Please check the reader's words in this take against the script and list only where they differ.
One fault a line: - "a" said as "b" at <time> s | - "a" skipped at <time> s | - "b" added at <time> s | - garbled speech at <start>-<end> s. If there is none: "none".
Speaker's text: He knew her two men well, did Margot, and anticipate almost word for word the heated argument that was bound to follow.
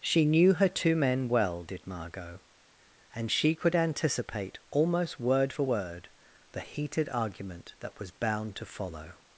- "He" said as "She" at 0.0 s
- "she could" added at 3.3 s